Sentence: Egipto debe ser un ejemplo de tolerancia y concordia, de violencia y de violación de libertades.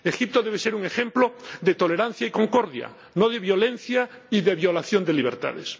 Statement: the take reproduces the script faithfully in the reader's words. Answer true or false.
false